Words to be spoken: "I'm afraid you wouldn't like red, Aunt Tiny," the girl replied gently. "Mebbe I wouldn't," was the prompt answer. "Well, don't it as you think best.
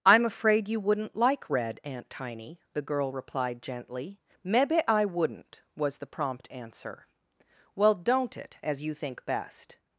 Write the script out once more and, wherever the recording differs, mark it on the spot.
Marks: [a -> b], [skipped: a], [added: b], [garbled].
"I'm afraid you wouldn't like red, Aunt Tiny," the girl replied gently. "Mebbe I wouldn't," was the prompt answer. "Well, don't it as you think best.